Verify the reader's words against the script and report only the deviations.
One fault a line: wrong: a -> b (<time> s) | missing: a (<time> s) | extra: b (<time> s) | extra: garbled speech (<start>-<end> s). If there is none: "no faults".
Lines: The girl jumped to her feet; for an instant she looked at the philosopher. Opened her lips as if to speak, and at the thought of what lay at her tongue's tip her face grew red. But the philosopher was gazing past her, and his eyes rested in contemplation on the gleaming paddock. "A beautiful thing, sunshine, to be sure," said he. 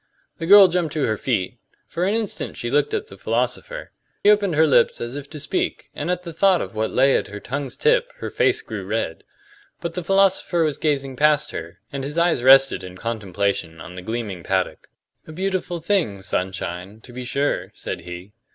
no faults